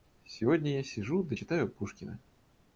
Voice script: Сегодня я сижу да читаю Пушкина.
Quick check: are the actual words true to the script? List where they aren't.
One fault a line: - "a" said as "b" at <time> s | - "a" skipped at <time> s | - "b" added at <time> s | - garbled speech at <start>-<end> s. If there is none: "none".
none